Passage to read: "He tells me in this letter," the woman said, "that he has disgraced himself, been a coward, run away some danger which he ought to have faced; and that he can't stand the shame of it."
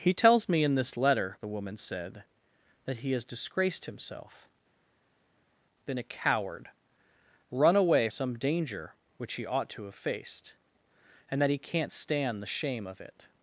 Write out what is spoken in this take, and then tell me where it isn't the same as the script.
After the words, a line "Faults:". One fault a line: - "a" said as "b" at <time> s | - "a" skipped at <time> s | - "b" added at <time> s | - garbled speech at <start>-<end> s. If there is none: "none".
"He tells me in this letter," the woman said, "that he has disgraced himself, been a coward, run away some danger which he ought to have faced; and that he can't stand the shame of it."
Faults:
none